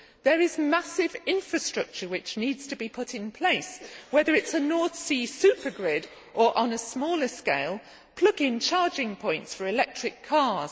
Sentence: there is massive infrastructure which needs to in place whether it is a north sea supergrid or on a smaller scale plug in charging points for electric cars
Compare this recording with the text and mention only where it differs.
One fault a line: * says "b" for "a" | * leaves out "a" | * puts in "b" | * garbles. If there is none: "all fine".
* puts in "be put"